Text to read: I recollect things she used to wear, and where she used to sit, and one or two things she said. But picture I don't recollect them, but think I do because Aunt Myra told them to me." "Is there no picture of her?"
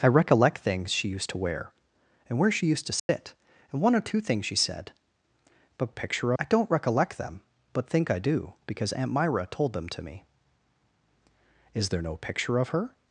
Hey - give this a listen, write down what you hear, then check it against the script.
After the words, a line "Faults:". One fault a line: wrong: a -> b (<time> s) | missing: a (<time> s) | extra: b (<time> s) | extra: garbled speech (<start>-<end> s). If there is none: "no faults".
I recollect things she used to wear, and where she used to sit, and one or two things she said. But picture I don't recollect them, but think I do because Aunt Myra told them to me." "Is there no picture of her?"
Faults:
no faults